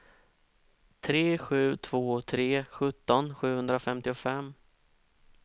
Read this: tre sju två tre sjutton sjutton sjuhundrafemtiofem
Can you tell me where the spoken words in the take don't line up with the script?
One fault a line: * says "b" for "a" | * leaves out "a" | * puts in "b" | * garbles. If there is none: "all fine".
* leaves out "sjutton"